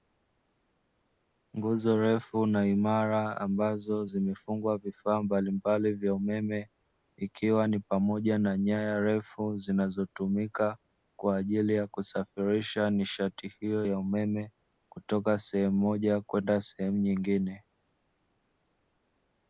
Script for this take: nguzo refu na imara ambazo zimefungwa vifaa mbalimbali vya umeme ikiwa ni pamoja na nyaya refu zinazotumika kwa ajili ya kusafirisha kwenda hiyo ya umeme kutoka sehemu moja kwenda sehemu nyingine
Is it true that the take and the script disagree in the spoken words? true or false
true